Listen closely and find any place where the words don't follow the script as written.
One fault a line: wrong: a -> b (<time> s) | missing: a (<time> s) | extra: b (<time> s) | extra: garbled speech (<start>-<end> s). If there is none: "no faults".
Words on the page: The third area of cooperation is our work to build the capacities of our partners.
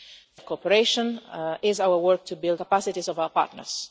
missing: third area (0.4 s)
missing: the (2.6 s)